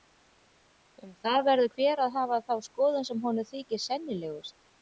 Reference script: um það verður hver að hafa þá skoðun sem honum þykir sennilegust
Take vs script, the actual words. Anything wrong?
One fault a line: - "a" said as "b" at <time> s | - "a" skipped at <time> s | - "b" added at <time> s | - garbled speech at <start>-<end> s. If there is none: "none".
none